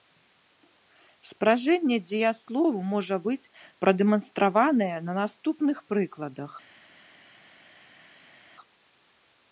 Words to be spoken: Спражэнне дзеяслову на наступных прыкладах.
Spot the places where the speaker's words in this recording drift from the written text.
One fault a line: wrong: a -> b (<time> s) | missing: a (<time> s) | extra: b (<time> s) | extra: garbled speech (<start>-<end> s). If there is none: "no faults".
extra: можа быць прадэманстраванае (3.0 s)